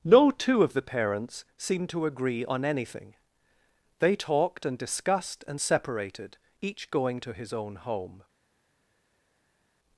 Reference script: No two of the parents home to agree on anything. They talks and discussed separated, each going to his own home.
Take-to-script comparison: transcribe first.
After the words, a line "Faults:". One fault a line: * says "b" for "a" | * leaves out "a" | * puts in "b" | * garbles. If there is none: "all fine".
No two of the parents seemed to agree on anything. They talked and discussed and separated, each going to his own home.
Faults:
* says "seemed" for "home"
* says "talked" for "talks"
* puts in "and"